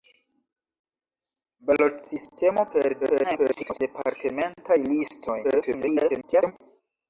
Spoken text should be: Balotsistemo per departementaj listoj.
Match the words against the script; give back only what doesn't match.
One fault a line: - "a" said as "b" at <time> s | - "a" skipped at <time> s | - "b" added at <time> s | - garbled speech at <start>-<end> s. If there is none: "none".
- garbled speech at 3.0-3.8 s
- garbled speech at 5.4-6.5 s